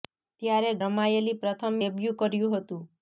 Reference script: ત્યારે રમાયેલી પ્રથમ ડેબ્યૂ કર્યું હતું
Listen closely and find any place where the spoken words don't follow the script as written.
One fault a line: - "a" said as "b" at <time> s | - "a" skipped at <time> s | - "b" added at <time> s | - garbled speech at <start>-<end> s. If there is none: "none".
none